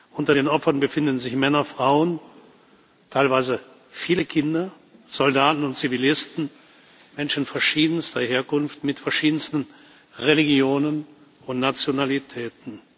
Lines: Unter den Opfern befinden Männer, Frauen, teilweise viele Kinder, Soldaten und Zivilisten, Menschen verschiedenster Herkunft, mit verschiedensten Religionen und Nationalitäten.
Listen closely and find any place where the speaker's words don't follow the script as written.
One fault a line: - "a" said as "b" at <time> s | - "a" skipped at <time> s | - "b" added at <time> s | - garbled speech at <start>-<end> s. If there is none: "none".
- "sich" added at 1.2 s